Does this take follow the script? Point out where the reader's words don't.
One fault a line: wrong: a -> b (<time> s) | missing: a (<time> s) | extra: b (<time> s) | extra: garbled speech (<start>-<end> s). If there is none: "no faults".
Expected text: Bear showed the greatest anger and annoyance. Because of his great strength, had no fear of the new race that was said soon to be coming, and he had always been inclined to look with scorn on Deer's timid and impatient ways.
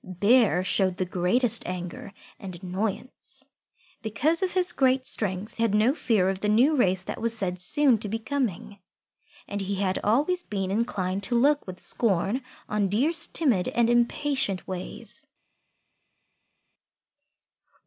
no faults